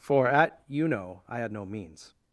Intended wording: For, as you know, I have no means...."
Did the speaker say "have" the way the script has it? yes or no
no